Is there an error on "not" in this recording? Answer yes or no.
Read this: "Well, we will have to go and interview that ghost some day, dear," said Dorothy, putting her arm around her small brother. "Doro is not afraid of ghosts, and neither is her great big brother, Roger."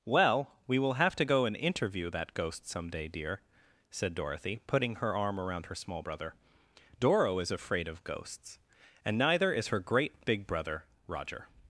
yes